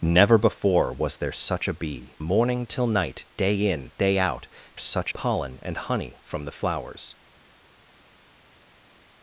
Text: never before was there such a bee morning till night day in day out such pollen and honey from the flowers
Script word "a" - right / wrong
right